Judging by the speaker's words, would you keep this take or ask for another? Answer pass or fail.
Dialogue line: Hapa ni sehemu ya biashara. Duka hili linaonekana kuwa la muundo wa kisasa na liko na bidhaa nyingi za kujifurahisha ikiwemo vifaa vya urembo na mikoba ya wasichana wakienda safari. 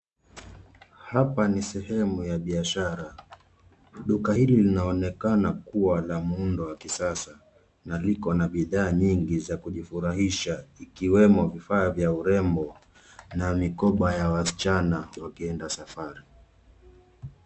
pass